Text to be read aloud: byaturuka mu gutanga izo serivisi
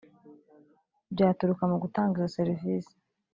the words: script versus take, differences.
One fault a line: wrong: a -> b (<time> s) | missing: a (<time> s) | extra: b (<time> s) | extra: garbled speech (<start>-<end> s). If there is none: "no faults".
no faults